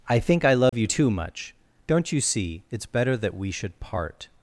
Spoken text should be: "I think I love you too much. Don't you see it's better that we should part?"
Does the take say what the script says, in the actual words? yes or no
yes